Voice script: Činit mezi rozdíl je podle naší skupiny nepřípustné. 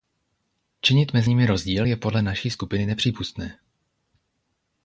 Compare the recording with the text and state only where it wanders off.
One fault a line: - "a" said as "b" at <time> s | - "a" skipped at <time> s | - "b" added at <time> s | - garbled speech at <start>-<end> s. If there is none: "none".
- "nimi" added at 1.3 s